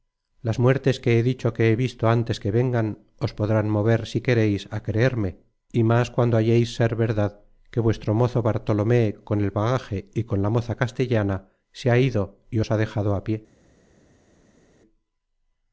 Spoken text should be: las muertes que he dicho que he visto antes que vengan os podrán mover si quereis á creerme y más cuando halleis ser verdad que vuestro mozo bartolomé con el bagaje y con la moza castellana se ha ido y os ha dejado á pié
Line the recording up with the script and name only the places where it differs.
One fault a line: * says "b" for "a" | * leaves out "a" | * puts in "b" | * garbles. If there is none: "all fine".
all fine